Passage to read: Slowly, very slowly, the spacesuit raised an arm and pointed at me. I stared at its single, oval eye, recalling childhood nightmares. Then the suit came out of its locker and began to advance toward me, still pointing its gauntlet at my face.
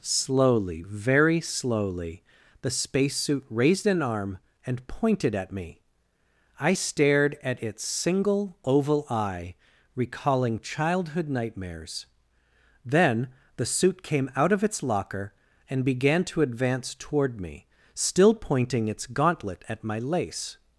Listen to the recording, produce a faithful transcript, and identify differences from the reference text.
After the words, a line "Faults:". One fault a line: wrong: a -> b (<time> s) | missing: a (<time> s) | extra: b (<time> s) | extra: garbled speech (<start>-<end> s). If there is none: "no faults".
Slowly, very slowly, the spacesuit raised an arm and pointed at me. I stared at its single, oval eye, recalling childhood nightmares. Then the suit came out of its locker and began to advance toward me, still pointing its gauntlet at my lace.
Faults:
wrong: face -> lace (20.0 s)